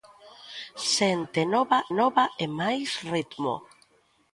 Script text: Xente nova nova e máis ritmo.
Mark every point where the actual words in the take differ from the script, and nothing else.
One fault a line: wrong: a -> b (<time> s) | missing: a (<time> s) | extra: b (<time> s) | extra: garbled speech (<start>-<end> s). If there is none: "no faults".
no faults